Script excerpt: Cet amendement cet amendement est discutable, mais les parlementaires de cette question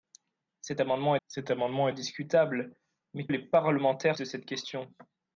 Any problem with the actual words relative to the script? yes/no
no